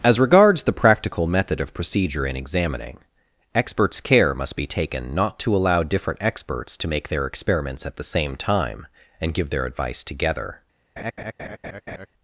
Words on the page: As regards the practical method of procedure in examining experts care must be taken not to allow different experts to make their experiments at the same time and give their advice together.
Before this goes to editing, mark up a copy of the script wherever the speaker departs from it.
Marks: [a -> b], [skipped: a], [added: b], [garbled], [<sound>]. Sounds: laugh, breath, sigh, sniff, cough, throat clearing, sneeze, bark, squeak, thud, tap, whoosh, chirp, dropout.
As regards the practical method of procedure in examining experts care must be taken not to allow different experts to make their experiments at the same time and give their advice together. [laugh]